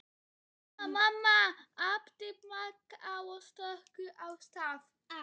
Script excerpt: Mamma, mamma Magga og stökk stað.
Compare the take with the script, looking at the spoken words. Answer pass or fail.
fail